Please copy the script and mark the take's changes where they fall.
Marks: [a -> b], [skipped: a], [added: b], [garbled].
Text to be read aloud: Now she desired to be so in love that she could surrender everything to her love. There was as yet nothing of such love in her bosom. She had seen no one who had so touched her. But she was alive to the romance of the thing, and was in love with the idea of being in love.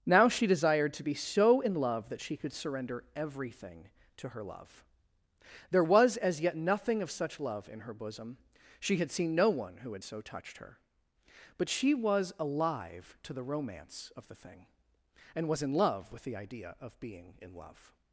Now she desired to be so in love that she could surrender everything to her love. There was as yet nothing of such love in her bosom. She had seen no one who had so touched her. But she was alive to the romance of the thing, and was in love with the idea of being in love.